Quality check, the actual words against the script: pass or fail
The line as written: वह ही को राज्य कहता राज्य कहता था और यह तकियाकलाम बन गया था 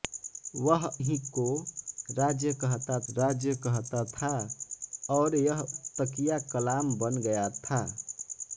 pass